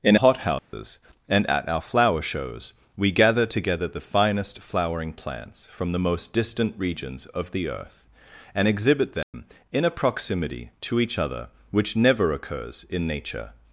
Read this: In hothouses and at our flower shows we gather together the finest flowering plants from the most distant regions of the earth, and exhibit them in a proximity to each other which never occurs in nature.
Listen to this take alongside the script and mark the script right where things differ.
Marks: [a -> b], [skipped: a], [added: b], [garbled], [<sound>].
In hothouses [dropout] and at our flower shows we gather together the finest flowering plants from the most distant regions of the earth, and exhibit them [dropout] in a proximity to each other which never occurs in nature.